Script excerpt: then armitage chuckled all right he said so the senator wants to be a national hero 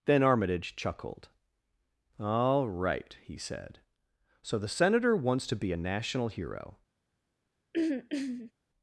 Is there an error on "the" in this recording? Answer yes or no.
no